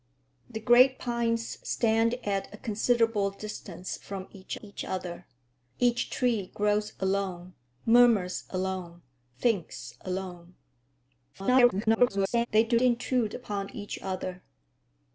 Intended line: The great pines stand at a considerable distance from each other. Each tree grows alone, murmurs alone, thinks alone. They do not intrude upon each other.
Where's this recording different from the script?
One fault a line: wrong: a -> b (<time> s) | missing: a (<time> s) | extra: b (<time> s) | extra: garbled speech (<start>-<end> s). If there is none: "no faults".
extra: each (4.6 s)
extra: garbled speech (11.3-12.5 s)
missing: not (12.8 s)